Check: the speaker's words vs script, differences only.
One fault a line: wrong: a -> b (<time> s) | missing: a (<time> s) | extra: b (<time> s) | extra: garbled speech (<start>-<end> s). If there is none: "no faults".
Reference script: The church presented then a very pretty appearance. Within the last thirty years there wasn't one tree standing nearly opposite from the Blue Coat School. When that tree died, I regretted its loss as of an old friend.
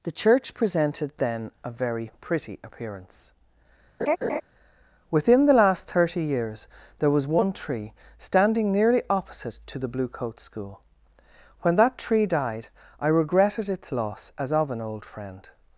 wrong: wasn't -> was (7.1 s)
wrong: from -> to (9.7 s)